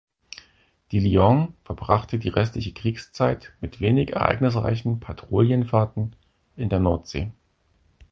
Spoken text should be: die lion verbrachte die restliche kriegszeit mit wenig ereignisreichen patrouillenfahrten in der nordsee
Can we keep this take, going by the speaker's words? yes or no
yes